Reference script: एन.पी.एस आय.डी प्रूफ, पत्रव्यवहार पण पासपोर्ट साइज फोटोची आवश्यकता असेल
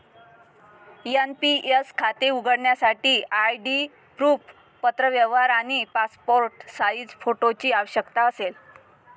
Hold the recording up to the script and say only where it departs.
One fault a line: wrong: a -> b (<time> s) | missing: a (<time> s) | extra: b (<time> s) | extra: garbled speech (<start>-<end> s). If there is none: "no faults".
extra: खाते उघडण्यासाठी (2.0 s)
wrong: पण -> आणि (5.5 s)